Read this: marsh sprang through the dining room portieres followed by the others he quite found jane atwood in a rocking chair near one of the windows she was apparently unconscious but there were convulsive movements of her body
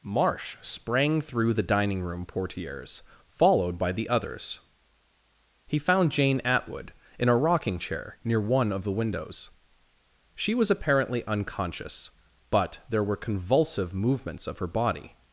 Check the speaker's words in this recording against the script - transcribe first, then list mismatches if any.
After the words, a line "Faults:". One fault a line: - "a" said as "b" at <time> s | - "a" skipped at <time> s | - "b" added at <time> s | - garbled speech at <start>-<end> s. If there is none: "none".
marsh sprang through the dining room portieres followed by the others he found jane atwood in a rocking chair near one of the windows she was apparently unconscious but there were convulsive movements of her body
Faults:
- "quite" skipped at 5.8 s